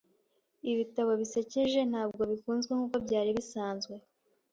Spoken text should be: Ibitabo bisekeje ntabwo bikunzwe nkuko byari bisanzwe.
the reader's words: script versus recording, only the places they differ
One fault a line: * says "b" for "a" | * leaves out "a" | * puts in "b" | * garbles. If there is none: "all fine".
all fine